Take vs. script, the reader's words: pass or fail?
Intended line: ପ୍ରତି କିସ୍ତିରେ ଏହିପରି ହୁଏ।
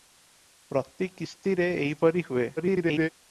fail